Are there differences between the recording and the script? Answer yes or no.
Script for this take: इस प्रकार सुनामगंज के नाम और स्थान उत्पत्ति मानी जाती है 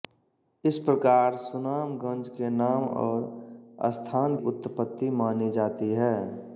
no